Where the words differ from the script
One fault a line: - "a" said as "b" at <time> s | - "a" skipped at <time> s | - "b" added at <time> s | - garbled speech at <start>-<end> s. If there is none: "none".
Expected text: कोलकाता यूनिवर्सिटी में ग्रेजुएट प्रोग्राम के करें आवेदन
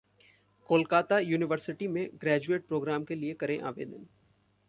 - "लिए" added at 3.1 s